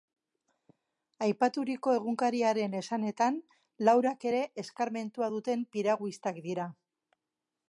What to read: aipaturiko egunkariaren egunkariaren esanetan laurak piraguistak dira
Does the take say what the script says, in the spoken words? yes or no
no